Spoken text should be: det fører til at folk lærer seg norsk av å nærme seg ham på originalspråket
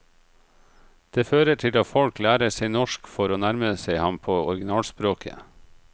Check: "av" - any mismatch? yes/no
yes